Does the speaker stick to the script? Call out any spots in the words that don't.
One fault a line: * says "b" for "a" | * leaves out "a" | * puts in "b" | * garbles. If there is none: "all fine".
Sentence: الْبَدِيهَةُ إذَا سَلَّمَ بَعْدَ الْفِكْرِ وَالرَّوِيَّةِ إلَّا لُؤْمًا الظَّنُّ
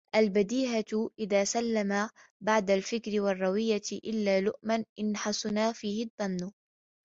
* puts in "إنْ حَسُنَ فِيهِ"